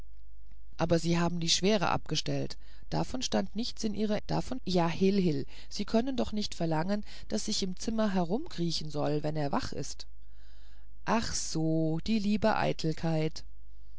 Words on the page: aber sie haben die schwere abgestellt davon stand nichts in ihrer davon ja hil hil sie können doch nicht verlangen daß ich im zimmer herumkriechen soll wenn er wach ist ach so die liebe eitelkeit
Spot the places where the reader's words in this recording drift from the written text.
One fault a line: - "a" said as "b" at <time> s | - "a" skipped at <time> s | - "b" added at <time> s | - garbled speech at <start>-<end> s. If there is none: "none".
none